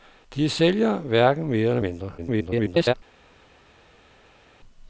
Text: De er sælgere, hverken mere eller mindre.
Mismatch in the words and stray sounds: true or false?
true